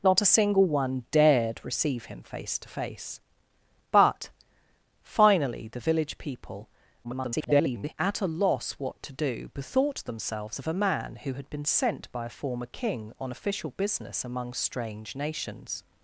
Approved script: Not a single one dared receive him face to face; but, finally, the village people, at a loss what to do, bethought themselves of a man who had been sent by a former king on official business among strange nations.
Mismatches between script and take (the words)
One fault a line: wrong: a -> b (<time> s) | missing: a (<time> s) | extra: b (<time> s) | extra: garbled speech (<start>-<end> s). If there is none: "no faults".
extra: garbled speech (7.0-7.9 s)